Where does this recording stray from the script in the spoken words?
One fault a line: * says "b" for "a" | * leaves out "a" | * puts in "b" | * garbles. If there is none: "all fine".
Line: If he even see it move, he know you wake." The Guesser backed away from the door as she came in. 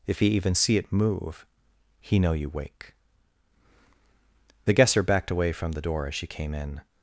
all fine